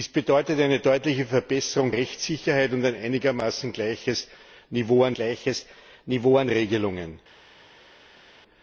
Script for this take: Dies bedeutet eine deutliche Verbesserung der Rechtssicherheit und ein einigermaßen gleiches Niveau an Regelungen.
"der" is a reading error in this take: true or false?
true